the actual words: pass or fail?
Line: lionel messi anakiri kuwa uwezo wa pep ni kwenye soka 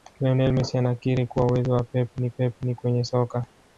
fail